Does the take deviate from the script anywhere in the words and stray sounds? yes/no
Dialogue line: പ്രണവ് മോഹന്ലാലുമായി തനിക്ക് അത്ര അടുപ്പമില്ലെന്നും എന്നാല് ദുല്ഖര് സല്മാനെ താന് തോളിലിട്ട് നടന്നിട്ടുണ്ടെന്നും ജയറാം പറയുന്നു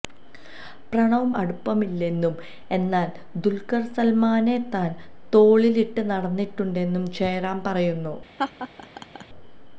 yes